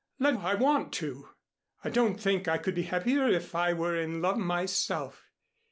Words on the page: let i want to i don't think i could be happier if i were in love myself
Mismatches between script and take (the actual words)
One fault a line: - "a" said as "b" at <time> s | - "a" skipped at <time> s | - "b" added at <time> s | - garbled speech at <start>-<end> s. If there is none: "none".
none